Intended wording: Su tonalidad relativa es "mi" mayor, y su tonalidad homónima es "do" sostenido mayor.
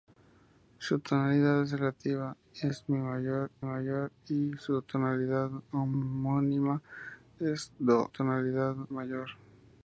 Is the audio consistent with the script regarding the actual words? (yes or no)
no